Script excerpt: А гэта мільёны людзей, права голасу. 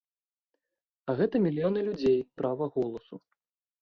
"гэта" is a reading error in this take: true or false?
false